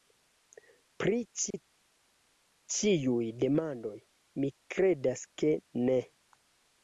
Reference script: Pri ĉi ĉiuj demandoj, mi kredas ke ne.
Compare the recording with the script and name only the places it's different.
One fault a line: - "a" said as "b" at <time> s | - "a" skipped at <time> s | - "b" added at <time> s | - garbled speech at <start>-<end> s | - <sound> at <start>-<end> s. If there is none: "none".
- dropout at 1.5-1.5 s